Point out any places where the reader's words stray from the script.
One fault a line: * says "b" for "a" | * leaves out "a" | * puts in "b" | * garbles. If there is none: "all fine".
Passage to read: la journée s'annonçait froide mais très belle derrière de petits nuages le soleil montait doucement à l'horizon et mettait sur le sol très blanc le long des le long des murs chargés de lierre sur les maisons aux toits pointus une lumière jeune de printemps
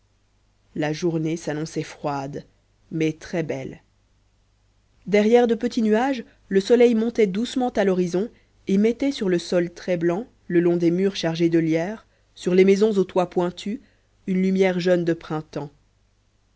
* leaves out "le long des"